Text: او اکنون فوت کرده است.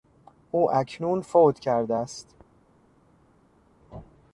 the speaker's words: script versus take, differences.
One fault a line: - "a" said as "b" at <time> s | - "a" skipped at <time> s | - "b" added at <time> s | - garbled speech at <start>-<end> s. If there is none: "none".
none